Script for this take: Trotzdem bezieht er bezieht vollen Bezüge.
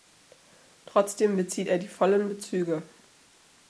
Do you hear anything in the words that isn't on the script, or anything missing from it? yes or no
yes